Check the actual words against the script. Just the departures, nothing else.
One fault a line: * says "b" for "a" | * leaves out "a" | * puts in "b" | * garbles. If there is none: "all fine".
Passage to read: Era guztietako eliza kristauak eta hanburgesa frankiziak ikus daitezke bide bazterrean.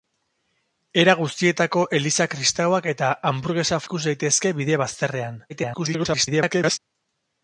* leaves out "frankiziak"
* garbles